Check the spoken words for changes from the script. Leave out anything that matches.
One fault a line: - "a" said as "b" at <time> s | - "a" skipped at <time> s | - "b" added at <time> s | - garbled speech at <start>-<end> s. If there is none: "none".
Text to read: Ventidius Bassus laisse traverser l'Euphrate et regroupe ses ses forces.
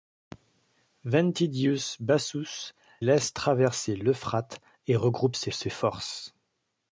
none